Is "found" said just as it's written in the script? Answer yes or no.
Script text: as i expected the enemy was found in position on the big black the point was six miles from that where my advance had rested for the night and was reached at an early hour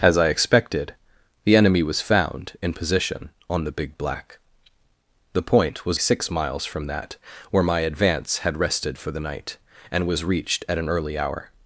yes